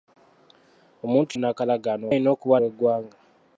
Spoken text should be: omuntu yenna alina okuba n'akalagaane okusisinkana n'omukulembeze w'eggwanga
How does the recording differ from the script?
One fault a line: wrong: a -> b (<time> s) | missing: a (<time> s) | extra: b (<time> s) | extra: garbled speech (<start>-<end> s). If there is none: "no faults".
wrong: yenna -> n'akalagaane (1.4 s)
missing: n'akalagaane okusisinkana n'omukulembeze (2.6 s)